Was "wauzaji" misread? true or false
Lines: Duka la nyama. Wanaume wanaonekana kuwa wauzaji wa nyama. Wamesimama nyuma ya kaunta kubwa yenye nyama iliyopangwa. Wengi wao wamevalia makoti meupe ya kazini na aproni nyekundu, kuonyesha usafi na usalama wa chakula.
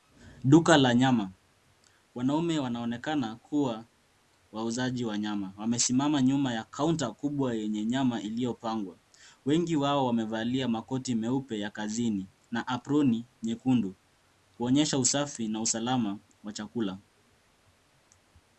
false